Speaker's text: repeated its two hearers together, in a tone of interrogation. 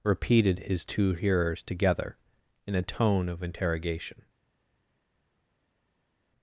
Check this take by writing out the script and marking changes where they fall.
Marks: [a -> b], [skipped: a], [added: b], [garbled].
repeated [its -> his] two hearers together, in a tone of interrogation.